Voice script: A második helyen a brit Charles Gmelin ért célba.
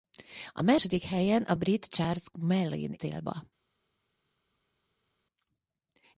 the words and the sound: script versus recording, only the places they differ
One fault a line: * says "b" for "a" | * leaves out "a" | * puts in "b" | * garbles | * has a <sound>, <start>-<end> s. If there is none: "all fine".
* leaves out "ért"